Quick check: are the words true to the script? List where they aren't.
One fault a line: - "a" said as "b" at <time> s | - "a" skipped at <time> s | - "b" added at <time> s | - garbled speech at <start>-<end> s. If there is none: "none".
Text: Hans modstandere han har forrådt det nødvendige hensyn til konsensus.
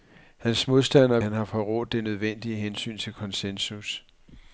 none